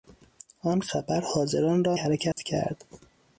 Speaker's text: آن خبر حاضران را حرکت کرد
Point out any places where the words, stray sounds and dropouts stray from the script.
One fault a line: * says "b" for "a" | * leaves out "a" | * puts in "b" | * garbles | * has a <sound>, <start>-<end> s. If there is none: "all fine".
* has a dropout, 2.3-2.4 s